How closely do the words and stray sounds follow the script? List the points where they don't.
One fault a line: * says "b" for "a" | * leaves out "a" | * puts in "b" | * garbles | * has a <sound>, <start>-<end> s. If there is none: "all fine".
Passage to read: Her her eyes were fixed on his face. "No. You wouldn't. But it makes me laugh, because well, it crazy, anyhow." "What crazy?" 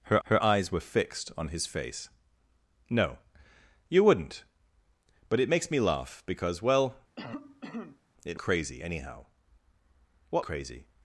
* has a cough, 7.2-8.0 s